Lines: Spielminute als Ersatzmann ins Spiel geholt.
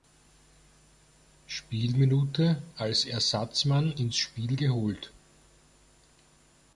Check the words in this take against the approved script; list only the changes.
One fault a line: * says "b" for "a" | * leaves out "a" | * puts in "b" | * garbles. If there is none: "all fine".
all fine